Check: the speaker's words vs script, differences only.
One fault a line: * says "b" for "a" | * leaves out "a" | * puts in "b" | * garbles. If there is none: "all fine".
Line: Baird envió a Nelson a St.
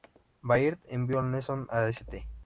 all fine